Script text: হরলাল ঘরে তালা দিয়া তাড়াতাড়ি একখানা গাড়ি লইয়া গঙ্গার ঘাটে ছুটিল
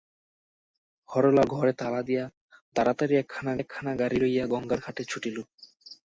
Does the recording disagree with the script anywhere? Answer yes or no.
yes